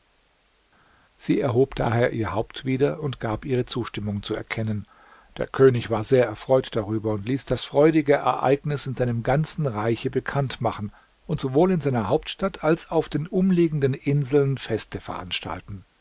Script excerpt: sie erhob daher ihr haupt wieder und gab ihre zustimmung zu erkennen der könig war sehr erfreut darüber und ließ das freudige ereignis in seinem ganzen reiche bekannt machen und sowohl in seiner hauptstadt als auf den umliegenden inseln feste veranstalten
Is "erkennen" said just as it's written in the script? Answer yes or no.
yes